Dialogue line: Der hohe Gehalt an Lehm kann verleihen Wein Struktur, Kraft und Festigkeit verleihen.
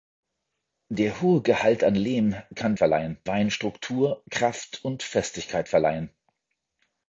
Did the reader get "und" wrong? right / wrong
right